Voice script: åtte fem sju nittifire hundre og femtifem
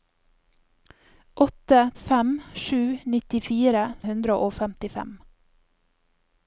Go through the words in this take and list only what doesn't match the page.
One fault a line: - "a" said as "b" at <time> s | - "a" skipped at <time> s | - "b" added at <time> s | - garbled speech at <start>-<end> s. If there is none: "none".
none